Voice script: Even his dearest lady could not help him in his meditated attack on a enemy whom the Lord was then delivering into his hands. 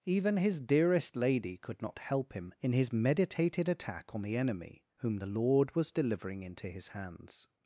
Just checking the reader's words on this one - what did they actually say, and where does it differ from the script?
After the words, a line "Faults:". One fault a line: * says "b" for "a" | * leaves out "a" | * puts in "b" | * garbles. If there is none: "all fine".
Even his dearest lady could not help him in his meditated attack on the enemy whom the Lord was delivering into his hands.
Faults:
* says "the" for "a"
* leaves out "then"